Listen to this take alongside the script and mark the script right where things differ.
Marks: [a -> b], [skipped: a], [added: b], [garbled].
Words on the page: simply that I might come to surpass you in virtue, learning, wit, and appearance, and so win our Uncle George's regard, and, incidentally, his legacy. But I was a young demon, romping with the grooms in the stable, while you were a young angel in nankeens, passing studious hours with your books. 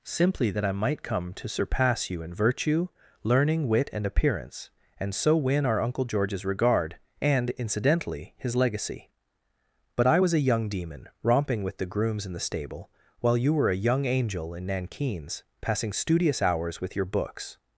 simply that I might come to surpass you in virtue, learning, wit, and appearance, and so win our Uncle George's regard, and, incidentally, his legacy. But I was a young demon, romping with the grooms in the stable, while you were a young angel in nankeens, passing studious hours with your books.